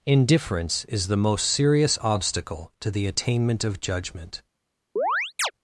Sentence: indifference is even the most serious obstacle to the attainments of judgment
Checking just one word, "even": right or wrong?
wrong